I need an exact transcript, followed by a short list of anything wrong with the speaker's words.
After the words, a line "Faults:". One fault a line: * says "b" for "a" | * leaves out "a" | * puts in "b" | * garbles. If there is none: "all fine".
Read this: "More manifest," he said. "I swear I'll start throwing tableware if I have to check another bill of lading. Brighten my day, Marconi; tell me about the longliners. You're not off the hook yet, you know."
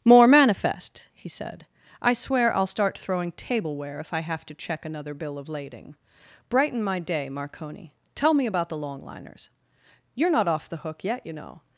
"More manifest," he said. "I swear I'll start throwing tableware if I have to check another bill of lading. Brighten my day, Marconi; tell me about the longliners. You're not off the hook yet, you know."
Faults:
all fine